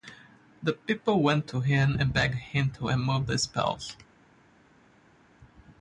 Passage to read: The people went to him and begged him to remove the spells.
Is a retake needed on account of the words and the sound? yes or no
no